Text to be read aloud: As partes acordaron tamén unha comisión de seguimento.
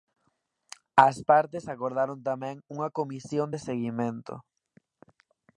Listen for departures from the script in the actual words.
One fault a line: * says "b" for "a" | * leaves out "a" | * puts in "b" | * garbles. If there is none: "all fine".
all fine